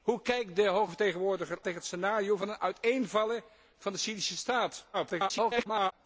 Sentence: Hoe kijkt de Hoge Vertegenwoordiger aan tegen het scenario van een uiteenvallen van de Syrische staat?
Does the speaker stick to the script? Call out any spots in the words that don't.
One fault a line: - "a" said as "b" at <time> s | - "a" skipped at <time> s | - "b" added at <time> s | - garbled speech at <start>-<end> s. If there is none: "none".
- "aan" skipped at 1.6 s
- garbled speech at 4.9-5.9 s